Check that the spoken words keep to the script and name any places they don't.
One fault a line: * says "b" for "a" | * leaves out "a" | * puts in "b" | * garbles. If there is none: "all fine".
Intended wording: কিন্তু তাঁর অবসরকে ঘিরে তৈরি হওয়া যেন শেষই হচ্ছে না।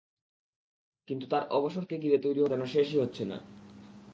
all fine